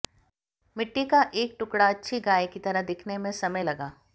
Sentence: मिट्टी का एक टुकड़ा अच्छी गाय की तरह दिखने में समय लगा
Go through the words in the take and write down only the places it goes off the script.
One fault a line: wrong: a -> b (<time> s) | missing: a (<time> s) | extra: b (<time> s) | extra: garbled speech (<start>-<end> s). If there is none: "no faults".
no faults